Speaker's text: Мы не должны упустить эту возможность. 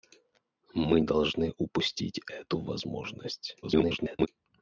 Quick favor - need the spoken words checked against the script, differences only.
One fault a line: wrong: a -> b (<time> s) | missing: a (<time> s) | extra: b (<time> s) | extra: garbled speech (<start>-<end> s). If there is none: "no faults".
missing: не (1.0 s)
extra: garbled speech (3.6-4.3 s)